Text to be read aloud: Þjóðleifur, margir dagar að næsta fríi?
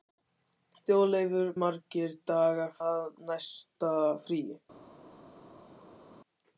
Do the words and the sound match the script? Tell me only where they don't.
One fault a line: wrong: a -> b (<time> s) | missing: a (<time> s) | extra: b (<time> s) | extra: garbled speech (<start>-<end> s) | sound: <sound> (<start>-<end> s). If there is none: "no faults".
no faults